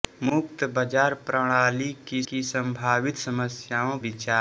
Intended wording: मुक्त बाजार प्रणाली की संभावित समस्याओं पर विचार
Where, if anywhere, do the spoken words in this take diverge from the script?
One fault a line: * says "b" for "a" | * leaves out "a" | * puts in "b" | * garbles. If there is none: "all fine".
* puts in "की"
* leaves out "पर"